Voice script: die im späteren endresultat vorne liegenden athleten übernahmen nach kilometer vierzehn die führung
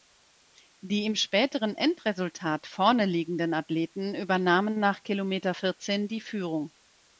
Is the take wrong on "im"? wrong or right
right